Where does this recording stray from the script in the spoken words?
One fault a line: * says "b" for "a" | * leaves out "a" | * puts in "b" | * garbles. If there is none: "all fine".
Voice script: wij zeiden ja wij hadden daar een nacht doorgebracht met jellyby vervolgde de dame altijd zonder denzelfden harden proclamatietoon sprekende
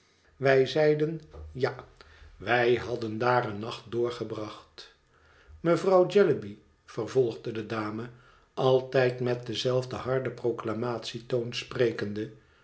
* says "mevrouw" for "met"
* says "met" for "zonder"